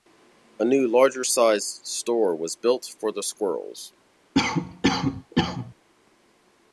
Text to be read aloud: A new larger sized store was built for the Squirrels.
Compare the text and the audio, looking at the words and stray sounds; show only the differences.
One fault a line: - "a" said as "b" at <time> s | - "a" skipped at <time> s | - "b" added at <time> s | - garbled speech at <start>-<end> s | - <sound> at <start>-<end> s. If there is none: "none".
- cough at 4.3-5.7 s